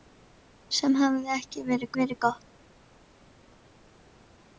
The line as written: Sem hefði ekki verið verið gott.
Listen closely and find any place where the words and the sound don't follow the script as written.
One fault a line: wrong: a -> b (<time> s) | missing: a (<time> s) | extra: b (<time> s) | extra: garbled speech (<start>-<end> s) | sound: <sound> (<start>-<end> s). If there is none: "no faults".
no faults